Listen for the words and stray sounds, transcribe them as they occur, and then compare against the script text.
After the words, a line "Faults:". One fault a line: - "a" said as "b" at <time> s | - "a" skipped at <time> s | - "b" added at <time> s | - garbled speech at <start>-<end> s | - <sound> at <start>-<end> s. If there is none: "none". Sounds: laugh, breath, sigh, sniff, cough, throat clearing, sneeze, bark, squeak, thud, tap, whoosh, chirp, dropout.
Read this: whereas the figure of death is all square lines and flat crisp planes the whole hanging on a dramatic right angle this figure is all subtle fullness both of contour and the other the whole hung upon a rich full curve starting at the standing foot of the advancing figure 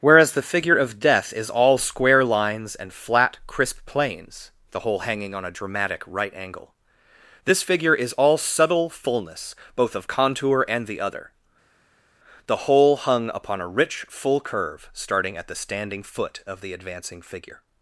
whereas the figure of death is all square lines and flat crisp planes the whole hanging on a dramatic right angle this figure is all subtle fullness both of contour and the other the whole hung upon a rich full curve starting at the standing foot of the advancing figure
Faults:
none